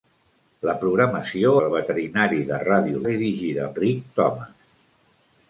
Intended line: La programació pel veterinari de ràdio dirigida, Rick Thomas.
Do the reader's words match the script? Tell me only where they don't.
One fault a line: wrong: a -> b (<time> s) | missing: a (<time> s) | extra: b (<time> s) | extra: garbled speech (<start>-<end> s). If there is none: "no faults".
no faults